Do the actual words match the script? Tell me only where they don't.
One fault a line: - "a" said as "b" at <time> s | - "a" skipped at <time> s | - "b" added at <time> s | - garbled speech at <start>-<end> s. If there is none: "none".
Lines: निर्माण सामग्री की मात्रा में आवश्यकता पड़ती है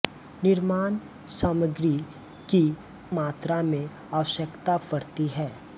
none